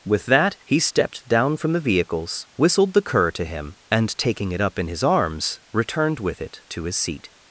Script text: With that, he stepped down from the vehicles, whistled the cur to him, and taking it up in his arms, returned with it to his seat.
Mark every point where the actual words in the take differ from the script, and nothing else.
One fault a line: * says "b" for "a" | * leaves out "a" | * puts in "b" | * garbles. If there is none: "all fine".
all fine